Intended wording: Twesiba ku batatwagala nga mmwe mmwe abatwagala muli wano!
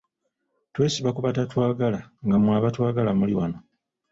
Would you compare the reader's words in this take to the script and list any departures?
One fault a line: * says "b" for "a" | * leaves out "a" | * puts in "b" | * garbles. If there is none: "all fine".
* leaves out "mmwe"